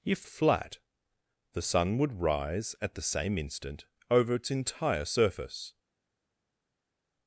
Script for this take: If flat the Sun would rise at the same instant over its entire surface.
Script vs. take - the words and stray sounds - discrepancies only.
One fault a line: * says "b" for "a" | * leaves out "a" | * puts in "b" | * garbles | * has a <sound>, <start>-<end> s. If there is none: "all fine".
all fine